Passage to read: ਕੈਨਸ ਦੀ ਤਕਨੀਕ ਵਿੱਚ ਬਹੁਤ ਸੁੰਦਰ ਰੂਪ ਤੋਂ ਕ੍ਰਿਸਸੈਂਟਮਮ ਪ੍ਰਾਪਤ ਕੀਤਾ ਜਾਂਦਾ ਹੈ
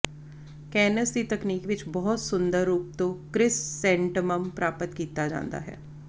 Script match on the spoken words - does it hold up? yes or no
yes